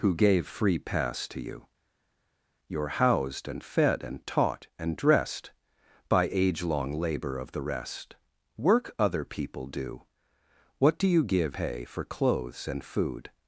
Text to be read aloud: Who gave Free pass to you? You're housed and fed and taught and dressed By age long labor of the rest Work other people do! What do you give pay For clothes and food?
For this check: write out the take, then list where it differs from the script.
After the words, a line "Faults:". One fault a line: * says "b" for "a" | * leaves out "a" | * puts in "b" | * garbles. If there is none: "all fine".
Who gave Free pass to you? You're housed and fed and taught and dressed By age long labor of the rest Work other people do! What do you give pay For clothes and food?
Faults:
all fine